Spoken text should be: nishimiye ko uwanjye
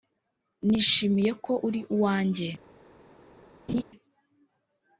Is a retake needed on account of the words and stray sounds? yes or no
yes